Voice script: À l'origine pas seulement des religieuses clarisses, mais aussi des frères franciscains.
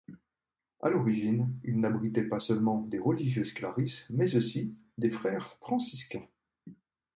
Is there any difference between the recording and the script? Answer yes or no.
yes